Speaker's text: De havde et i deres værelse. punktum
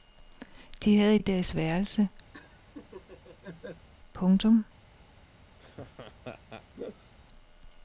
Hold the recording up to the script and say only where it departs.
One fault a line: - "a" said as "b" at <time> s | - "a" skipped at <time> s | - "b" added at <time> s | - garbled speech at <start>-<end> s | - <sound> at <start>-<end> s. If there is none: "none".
- laugh at 2.3-3.9 s
- laugh at 5.6-7.1 s